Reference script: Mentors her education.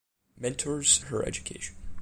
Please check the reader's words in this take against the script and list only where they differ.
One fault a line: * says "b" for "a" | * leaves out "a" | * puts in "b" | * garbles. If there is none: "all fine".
all fine